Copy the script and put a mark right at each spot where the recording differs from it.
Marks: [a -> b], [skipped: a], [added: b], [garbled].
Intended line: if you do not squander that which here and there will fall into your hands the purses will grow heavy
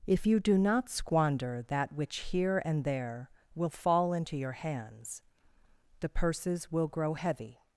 if you do not squander that which here and there will fall into your hands the purses will grow heavy